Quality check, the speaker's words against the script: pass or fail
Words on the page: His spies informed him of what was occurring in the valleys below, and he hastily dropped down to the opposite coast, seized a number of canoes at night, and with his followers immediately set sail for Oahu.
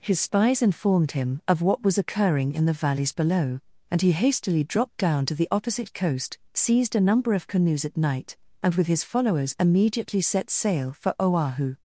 pass